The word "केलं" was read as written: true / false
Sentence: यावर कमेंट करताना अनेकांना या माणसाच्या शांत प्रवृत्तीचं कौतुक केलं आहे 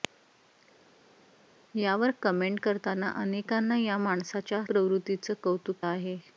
false